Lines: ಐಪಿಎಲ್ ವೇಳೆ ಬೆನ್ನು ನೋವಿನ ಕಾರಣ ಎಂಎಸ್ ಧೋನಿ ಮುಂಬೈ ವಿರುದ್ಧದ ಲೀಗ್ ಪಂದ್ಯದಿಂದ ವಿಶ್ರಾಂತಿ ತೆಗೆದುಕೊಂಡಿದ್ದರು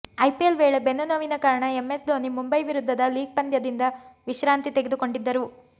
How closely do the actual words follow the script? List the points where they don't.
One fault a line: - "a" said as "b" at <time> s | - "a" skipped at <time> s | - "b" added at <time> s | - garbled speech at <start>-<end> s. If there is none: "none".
none